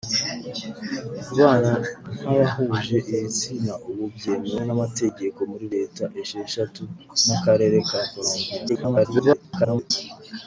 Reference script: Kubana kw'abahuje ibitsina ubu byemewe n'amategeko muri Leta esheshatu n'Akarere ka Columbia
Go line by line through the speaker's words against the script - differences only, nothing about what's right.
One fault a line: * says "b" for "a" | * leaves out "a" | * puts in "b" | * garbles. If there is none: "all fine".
* garbles